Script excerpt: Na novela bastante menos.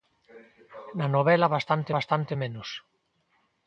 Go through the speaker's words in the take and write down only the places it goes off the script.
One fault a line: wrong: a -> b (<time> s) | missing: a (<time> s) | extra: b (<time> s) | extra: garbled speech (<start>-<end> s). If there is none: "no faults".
extra: bastante (2.0 s)